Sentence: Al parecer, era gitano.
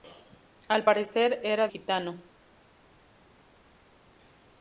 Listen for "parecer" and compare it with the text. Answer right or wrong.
right